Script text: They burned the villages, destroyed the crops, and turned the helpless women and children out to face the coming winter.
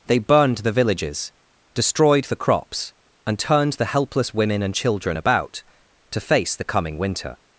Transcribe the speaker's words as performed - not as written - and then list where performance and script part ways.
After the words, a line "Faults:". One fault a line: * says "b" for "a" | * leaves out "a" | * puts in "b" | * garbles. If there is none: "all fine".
They burned the villages, destroyed the crops, and turned the helpless women and children about to face the coming winter.
Faults:
* says "about" for "out"